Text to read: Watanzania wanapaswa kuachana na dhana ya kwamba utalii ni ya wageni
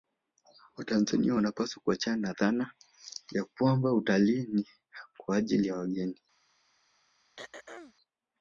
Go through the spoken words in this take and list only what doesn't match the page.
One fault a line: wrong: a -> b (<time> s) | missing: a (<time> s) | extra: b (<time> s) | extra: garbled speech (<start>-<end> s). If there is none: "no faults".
extra: kwa ajili (5.2 s)